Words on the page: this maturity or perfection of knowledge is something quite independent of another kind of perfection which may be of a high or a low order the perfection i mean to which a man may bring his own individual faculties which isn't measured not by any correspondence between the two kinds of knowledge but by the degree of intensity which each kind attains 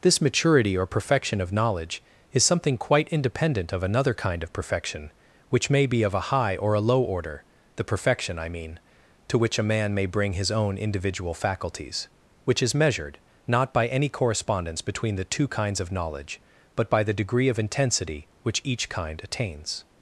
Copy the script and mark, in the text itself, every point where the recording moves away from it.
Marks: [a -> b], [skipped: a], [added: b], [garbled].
this maturity or perfection of knowledge is something quite independent of another kind of perfection which may be of a high or a low order the perfection i mean to which a man may bring his own individual faculties which [isn't -> is] measured not by any correspondence between the two kinds of knowledge but by the degree of intensity which each kind attains